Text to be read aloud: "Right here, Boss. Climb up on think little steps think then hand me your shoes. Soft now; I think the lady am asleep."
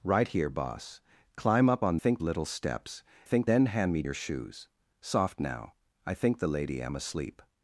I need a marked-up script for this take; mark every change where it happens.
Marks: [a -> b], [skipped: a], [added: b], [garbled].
"Right here, Boss. Climb up on think little steps think then hand me your shoes. Soft now; I think the lady am asleep."